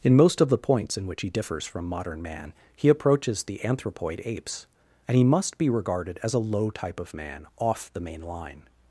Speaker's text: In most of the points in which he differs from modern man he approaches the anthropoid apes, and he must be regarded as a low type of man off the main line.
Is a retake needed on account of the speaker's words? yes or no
no